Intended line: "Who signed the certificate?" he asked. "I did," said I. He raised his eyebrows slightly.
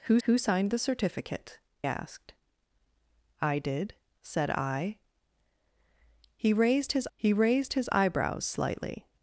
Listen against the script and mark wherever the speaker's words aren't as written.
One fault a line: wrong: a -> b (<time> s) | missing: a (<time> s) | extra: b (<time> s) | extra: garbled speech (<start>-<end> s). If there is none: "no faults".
extra: who (0.2 s)
missing: he (1.6 s)
extra: he raised his (7.1 s)